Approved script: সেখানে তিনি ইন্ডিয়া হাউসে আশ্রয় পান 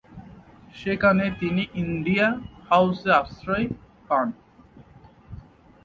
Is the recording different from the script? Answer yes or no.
no